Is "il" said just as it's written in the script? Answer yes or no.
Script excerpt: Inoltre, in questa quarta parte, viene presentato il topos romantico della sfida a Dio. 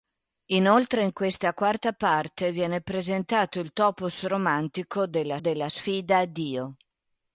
yes